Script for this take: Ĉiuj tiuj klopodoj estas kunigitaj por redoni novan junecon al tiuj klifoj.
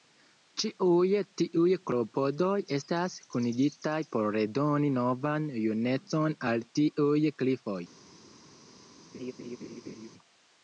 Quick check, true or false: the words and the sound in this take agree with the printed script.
false